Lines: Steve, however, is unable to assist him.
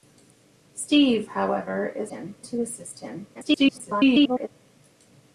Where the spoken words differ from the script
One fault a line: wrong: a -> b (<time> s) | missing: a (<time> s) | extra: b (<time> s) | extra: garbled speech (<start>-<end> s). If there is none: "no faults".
wrong: unable -> him (2.1 s)
extra: garbled speech (3.3-4.5 s)